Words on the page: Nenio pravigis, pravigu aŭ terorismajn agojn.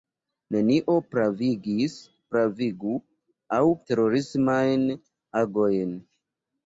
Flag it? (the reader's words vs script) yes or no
no